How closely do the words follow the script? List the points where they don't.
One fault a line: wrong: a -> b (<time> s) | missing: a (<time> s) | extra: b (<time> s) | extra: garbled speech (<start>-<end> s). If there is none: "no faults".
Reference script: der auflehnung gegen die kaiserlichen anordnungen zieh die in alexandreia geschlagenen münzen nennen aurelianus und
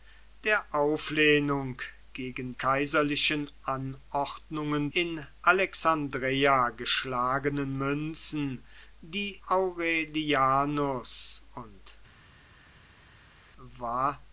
missing: die (2.5 s)
missing: zieh die (4.9 s)
wrong: nennen -> die (9.0 s)